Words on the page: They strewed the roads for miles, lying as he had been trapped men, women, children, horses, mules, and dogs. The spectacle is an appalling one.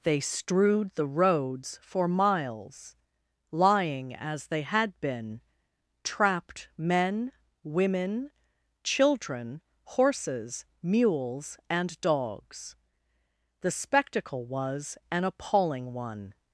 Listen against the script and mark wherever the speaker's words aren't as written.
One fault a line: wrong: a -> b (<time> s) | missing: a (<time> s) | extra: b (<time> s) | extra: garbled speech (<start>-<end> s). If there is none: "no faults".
wrong: he -> they (4.5 s)
wrong: is -> was (14.5 s)